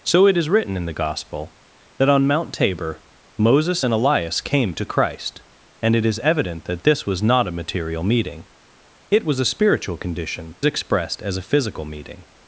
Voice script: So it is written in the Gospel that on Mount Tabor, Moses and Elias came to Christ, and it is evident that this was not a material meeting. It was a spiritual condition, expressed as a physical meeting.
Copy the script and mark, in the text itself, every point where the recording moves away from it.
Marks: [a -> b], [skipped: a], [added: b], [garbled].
So it is written in the Gospel that on Mount Tabor, Moses and Elias came to Christ, and it is evident that this was not a material meeting. It was a spiritual condition, expressed as a physical meeting.